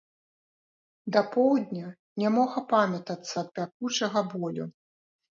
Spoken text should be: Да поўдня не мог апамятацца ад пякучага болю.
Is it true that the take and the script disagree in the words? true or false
false